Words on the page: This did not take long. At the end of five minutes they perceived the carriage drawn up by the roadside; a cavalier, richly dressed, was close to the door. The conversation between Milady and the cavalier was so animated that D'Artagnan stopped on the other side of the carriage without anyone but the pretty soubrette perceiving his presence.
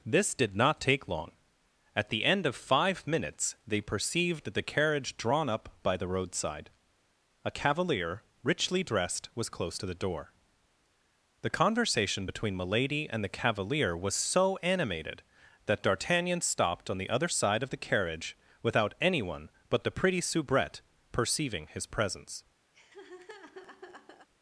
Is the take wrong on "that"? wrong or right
right